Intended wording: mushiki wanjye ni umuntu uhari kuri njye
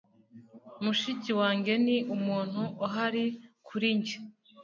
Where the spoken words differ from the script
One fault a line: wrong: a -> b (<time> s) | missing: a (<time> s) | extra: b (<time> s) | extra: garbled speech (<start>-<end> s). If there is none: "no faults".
no faults